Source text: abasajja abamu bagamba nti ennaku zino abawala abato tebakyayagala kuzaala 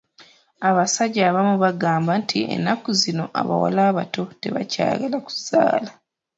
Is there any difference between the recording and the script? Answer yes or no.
no